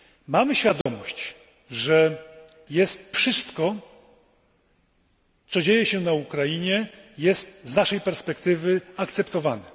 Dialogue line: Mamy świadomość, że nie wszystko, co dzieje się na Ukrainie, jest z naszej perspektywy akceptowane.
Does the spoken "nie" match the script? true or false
false